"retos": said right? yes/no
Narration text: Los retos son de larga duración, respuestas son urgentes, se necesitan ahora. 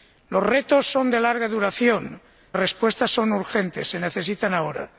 yes